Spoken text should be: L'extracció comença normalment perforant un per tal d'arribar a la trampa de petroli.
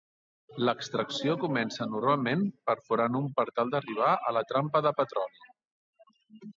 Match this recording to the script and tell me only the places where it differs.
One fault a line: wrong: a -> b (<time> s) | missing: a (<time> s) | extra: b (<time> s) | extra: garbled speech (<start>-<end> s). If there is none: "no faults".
no faults